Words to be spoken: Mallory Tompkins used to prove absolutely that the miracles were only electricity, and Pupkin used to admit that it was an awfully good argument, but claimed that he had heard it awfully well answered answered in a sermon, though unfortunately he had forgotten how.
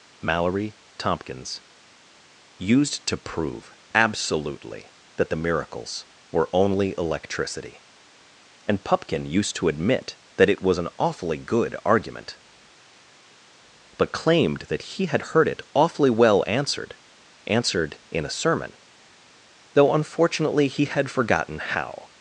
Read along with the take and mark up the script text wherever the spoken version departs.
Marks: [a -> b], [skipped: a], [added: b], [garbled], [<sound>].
Mallory Tompkins used to prove absolutely that the miracles were only electricity, and Pupkin used to admit that it was an awfully good argument, but claimed that he had heard it awfully well answered answered in a sermon, though unfortunately he had forgotten how.